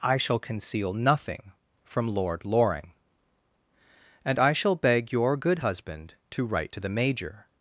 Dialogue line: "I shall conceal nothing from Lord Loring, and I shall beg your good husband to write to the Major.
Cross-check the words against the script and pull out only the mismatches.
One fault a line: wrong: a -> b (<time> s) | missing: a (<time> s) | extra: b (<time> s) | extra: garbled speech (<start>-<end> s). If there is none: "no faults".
no faults